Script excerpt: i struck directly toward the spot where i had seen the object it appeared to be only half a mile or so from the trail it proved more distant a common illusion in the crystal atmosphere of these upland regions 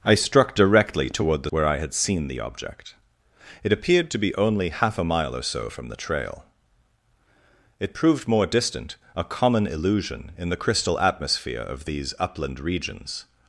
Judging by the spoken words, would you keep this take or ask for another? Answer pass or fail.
fail